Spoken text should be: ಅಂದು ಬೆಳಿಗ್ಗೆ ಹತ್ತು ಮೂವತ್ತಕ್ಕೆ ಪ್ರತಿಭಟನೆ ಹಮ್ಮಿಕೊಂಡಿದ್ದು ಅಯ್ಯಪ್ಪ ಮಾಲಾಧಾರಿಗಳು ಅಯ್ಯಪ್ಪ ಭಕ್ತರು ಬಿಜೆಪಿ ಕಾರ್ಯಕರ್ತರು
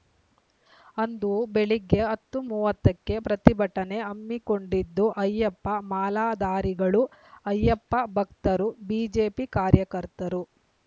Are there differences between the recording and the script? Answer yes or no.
no